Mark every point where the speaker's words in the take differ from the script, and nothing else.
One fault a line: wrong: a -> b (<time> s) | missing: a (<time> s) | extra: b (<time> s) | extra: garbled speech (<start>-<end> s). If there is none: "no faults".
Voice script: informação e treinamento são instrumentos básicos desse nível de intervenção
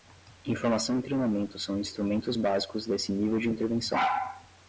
no faults